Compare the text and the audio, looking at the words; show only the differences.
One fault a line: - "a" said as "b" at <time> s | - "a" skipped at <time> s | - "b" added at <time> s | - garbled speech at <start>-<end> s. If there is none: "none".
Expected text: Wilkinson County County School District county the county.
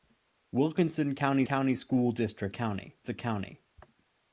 none